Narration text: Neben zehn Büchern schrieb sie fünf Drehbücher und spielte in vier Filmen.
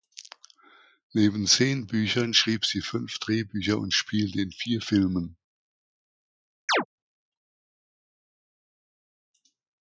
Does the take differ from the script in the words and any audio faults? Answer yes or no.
yes